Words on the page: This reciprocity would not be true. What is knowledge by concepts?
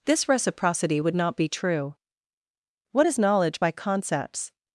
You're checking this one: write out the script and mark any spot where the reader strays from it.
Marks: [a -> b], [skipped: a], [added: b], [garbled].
This reciprocity would not be true. What is knowledge by concepts?